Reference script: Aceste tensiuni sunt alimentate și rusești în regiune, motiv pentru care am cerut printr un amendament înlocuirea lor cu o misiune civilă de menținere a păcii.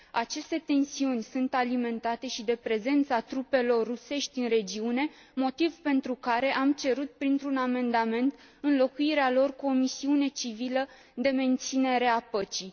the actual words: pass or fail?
fail